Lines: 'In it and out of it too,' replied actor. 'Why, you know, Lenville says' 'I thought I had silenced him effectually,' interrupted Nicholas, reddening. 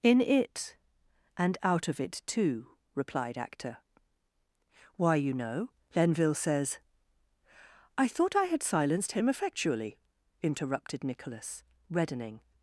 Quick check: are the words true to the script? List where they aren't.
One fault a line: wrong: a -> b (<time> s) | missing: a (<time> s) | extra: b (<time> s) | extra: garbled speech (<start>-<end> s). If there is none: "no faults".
no faults